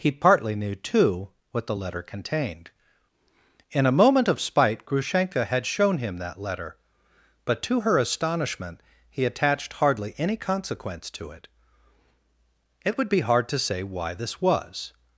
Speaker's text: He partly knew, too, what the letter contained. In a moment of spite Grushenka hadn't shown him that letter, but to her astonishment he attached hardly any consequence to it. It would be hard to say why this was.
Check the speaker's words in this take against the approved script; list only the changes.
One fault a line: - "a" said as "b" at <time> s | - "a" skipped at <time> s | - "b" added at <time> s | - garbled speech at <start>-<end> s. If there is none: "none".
- "hadn't" said as "had" at 5.4 s